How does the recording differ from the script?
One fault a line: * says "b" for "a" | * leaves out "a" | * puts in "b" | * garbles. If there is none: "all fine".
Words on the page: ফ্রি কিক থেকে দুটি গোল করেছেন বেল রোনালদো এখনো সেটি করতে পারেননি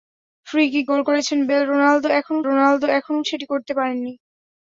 * leaves out "থেকে দুটি"
* puts in "রোনালদো এখনো"